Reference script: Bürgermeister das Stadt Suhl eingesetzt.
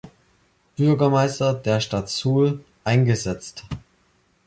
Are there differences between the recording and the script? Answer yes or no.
yes